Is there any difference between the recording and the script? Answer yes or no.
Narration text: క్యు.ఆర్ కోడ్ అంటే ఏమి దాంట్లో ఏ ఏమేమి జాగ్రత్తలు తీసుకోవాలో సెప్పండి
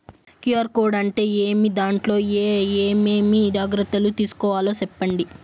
no